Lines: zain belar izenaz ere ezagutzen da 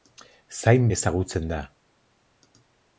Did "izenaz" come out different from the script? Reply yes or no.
yes